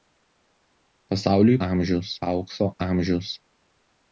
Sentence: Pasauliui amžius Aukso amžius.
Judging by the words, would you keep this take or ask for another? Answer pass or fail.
pass